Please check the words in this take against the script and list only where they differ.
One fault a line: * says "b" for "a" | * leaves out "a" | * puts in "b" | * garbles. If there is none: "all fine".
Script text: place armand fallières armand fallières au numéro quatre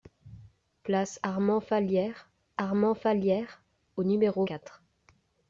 all fine